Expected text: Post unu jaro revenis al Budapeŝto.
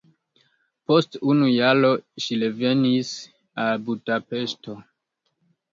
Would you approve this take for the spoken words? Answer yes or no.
no